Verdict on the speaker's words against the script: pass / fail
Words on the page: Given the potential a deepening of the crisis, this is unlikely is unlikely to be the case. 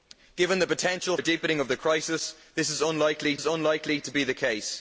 pass